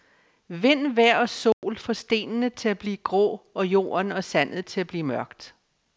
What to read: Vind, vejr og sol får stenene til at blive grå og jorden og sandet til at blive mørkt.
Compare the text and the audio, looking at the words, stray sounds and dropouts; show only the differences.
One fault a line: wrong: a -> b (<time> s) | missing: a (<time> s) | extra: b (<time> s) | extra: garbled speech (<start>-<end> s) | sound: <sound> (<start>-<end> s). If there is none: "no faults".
sound: dropout (1.5-1.6 s)